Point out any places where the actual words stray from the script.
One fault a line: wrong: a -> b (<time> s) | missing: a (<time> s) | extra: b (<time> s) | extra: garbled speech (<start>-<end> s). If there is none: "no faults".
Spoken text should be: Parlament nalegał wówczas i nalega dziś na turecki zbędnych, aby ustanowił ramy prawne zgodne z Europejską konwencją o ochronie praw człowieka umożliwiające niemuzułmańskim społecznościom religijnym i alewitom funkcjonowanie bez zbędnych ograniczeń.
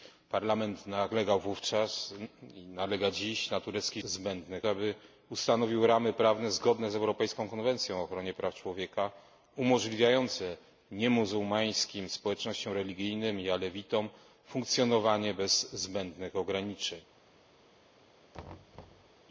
no faults